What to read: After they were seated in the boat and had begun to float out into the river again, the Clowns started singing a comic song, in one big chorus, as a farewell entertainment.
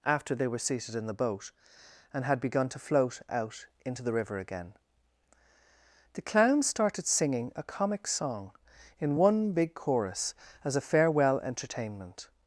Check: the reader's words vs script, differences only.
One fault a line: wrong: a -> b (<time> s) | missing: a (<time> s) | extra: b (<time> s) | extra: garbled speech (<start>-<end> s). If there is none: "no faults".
no faults